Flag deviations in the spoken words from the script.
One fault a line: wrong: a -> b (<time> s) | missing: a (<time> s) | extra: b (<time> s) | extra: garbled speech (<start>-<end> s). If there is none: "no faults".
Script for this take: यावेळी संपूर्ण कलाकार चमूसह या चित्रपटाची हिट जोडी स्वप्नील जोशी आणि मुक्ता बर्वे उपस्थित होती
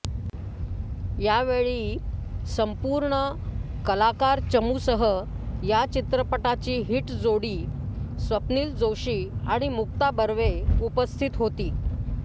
no faults